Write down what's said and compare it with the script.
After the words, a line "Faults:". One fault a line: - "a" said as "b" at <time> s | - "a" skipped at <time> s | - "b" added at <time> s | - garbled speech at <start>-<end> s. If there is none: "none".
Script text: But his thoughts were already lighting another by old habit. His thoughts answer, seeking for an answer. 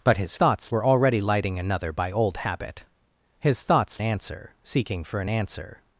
But his thoughts were already lighting another by old habit. His thoughts answer, seeking for an answer.
Faults:
none